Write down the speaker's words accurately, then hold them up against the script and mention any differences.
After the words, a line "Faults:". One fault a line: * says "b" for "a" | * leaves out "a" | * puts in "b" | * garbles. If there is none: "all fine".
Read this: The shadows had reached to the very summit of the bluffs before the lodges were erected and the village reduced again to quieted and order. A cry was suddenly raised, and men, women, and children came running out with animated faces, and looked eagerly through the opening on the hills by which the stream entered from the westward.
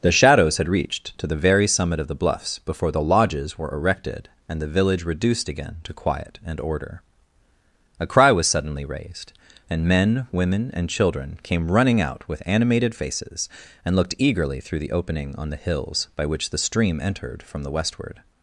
The shadows had reached to the very summit of the bluffs before the lodges were erected and the village reduced again to quiet and order. A cry was suddenly raised, and men, women, and children came running out with animated faces, and looked eagerly through the opening on the hills by which the stream entered from the westward.
Faults:
* says "quiet" for "quieted"